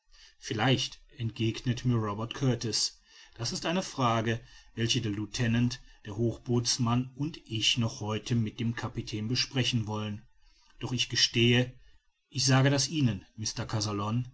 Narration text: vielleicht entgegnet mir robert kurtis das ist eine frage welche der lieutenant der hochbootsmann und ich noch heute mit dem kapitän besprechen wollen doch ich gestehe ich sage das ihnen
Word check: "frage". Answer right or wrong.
right